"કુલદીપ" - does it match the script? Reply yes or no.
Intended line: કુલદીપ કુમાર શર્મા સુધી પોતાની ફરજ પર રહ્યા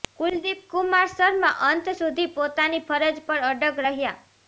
yes